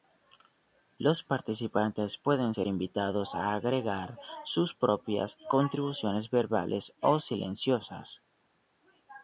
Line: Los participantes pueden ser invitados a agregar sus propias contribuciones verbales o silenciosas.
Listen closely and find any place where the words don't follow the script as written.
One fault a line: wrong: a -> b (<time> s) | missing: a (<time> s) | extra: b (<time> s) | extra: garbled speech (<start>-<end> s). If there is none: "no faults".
no faults